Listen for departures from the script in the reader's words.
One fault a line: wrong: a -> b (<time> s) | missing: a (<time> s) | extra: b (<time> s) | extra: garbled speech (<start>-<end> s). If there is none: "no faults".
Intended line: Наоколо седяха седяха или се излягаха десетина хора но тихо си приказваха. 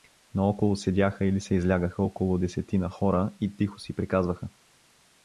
missing: седяха (1.2 s)
extra: около (2.0 s)
wrong: но -> и (3.4 s)